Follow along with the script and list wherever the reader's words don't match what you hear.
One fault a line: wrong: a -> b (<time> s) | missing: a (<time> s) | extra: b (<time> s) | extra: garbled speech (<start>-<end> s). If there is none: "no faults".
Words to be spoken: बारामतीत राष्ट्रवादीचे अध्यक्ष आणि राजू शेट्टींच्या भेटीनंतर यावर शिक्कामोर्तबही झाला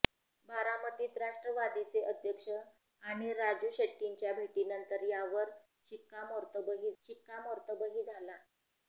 extra: शिक्कामोर्तबही (7.0 s)